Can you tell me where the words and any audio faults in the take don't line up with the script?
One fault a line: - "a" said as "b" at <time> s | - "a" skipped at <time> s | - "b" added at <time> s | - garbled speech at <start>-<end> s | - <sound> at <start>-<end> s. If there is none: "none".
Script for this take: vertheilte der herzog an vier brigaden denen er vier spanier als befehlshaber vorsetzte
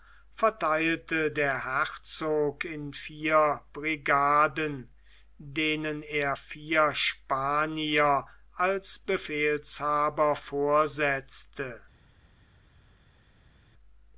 - "an" said as "in" at 2.6 s